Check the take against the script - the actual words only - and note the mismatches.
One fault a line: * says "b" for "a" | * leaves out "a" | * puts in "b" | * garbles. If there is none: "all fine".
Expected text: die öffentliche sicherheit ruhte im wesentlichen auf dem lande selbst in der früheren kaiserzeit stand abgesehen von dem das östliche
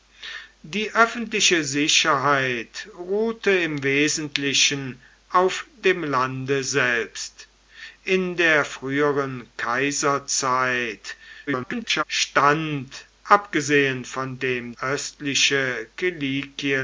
* garbles
* leaves out "das"